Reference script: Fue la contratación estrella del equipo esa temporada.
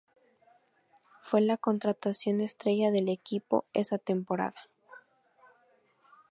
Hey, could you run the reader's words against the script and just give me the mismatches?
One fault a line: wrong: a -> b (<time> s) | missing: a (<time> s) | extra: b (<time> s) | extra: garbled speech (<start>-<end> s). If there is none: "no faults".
no faults